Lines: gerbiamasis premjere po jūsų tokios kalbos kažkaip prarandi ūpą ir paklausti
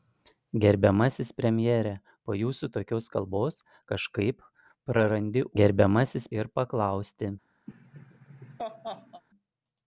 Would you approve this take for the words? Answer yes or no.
no